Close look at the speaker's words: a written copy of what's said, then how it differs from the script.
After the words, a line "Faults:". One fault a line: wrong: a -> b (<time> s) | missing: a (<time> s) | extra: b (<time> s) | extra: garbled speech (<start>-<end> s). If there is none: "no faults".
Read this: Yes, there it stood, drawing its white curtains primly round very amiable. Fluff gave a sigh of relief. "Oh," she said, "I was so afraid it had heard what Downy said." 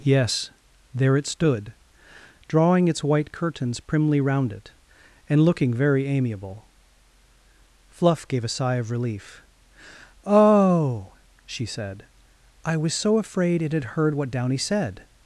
Yes, there it stood, drawing its white curtains primly round it, and looking very amiable. Fluff gave a sigh of relief. "Oh," she said, "I was so afraid it had heard what Downy said."
Faults:
extra: it and looking (4.5 s)